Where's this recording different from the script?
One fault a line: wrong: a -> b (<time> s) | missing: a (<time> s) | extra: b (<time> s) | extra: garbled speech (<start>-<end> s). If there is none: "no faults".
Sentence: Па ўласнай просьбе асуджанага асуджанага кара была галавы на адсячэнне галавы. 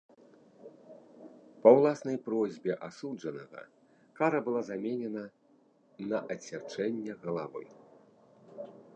missing: асуджанага (3.6 s)
wrong: галавы -> заменена (4.7 s)